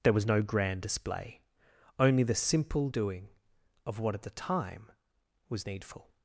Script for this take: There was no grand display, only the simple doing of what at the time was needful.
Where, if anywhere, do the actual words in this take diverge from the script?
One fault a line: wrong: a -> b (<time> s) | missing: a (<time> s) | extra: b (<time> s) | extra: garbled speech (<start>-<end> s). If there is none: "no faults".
no faults